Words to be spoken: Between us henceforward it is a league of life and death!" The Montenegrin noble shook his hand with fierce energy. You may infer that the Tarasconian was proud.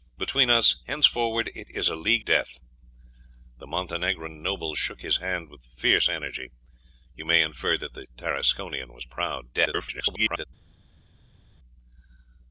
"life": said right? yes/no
no